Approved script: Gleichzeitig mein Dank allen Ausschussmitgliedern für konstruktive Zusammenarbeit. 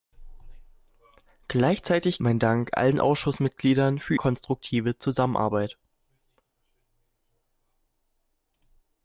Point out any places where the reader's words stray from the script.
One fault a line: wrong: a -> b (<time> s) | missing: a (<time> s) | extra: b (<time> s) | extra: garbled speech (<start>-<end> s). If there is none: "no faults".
no faults